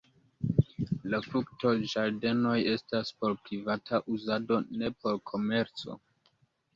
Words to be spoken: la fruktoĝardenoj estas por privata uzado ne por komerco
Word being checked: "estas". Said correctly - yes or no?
yes